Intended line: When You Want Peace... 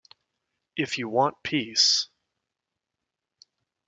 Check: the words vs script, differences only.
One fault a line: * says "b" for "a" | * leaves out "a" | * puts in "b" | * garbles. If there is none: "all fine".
* says "If" for "When"